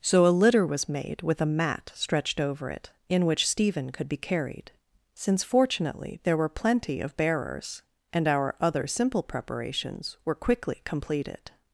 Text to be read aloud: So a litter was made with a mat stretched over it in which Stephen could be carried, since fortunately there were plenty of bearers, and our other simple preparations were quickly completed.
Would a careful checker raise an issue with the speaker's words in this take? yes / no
no